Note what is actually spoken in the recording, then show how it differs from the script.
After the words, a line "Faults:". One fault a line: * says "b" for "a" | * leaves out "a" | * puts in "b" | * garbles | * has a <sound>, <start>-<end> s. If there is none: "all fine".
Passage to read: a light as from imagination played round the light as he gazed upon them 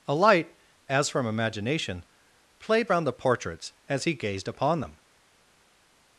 a light as from imagination played round the portraits as he gazed upon them
Faults:
* says "portraits" for "light"